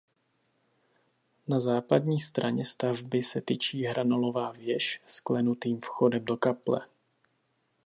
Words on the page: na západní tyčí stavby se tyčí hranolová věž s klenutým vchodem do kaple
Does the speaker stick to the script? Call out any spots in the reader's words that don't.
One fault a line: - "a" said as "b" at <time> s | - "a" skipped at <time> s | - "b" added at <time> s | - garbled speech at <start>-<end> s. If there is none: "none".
- "tyčí" said as "straně" at 2.2 s